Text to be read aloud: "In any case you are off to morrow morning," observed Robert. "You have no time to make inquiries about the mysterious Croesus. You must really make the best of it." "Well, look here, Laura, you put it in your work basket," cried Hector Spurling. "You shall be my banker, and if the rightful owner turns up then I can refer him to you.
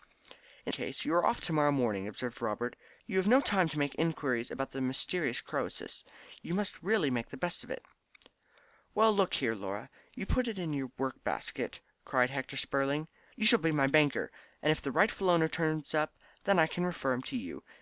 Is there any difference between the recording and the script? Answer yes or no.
yes